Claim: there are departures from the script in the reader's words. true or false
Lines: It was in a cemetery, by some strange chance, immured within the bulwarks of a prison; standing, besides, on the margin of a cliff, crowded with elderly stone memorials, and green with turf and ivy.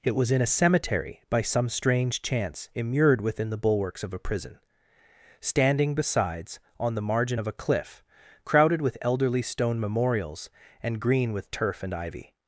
false